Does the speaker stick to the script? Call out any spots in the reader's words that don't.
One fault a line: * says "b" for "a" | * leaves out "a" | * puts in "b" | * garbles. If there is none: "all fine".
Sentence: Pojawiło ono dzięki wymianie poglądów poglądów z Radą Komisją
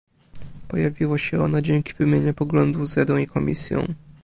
* puts in "się"
* leaves out "poglądów"
* puts in "i"